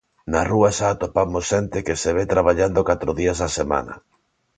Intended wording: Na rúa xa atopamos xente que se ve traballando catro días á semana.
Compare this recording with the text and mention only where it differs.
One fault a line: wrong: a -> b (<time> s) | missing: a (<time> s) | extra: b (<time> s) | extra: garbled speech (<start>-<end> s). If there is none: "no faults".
no faults